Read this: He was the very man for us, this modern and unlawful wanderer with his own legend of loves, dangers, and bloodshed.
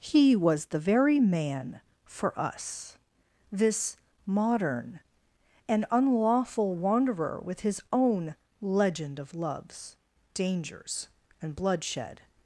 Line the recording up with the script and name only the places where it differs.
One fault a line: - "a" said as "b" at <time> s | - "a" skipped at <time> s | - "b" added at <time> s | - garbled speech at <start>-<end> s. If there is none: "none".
none